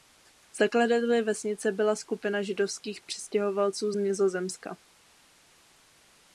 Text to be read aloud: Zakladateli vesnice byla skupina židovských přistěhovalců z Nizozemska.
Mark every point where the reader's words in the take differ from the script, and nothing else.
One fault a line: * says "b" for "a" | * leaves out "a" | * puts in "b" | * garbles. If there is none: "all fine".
all fine